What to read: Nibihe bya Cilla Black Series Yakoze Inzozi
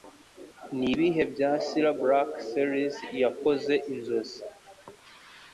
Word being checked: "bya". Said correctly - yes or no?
yes